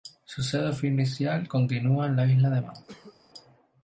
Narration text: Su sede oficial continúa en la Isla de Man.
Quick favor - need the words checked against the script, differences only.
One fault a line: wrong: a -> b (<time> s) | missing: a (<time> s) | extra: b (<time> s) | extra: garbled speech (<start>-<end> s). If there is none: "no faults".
no faults